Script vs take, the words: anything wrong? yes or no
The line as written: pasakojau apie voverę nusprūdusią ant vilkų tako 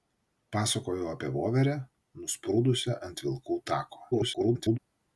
yes